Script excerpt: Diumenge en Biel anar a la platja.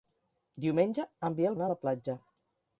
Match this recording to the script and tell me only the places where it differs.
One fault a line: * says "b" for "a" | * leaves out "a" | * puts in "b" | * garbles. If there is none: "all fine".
all fine